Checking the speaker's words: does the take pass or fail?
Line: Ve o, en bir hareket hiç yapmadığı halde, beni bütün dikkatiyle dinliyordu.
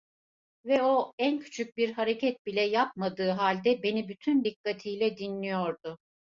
fail